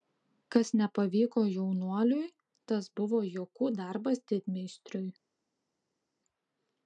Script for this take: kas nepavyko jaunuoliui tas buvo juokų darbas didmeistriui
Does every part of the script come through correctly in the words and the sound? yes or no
yes